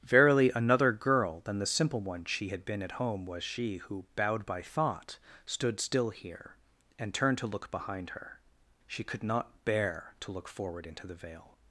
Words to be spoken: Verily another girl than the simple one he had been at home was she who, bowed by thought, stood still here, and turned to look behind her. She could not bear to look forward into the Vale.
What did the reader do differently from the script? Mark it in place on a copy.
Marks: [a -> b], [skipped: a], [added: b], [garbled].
Verily another girl than the simple one [he -> she] had been at home was she who, bowed by thought, stood still here, and turned to look behind her. She could not bear to look forward into the Vale.